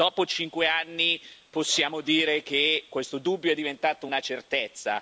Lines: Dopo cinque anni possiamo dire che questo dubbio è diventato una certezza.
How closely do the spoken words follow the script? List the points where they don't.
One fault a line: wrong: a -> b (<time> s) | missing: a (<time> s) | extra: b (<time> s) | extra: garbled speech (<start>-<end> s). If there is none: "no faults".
no faults